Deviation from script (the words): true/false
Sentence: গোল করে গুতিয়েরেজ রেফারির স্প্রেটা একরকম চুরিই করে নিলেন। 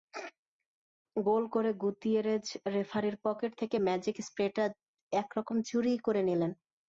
true